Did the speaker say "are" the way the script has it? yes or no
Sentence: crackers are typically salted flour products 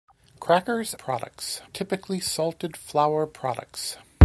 no